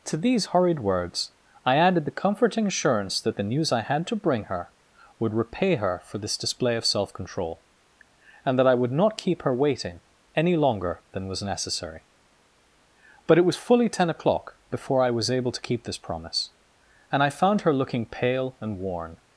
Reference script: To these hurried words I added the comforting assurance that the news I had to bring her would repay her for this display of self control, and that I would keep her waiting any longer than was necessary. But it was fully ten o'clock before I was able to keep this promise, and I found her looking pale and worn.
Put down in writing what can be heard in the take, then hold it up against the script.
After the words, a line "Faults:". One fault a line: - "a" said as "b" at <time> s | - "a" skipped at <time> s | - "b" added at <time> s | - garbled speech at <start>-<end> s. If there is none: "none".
To these hurried words I added the comforting assurance that the news I had to bring her would repay her for this display of self control, and that I would not keep her waiting any longer than was necessary. But it was fully ten o'clock before I was able to keep this promise, and I found her looking pale and worn.
Faults:
- "not" added at 8.9 s